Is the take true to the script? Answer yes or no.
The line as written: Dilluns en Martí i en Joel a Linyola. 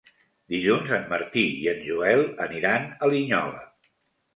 no